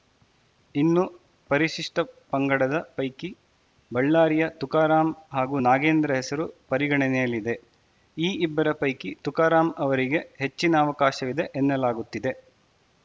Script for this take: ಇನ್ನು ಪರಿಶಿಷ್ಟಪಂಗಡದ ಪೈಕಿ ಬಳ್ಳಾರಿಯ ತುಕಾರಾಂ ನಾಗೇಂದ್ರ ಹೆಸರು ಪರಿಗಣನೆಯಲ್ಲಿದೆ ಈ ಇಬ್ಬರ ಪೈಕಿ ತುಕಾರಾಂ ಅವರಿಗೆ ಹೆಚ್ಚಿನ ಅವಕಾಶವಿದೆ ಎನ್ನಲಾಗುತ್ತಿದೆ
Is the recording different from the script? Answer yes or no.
yes